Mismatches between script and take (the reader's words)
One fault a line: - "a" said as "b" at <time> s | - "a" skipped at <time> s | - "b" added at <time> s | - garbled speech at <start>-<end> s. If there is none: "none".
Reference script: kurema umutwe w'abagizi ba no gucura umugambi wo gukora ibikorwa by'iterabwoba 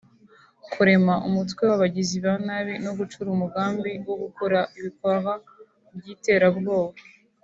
- "nabi" added at 2.5 s